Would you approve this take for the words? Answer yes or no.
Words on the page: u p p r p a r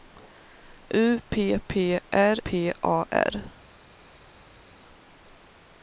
yes